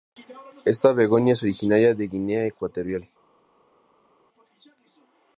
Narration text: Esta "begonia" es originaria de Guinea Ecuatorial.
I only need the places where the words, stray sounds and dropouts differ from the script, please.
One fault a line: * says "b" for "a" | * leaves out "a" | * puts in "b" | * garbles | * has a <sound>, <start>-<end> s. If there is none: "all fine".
all fine